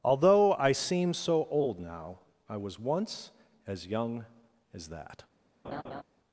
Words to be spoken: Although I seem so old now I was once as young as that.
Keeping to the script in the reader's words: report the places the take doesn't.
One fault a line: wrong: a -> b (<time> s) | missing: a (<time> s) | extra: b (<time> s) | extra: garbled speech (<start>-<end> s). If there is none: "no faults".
no faults